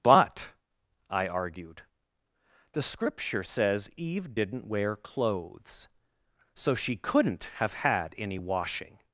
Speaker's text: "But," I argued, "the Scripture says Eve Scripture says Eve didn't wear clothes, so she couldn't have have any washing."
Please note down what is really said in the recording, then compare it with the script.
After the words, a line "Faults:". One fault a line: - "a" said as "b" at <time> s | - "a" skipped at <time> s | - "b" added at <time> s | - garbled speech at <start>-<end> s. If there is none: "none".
"But," I argued, "the Scripture says Eve didn't wear clothes, so she couldn't have had any washing."
Faults:
- "Scripture says Eve" skipped at 4.3 s
- "have" said as "had" at 7.7 s